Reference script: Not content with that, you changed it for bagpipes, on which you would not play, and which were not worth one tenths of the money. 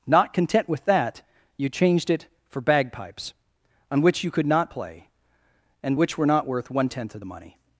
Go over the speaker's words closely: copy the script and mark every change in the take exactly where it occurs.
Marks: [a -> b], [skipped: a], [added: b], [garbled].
Not content with that, you changed it for bagpipes, on which you [would -> could] not play, and which were not worth one [tenths -> tenth] of the money.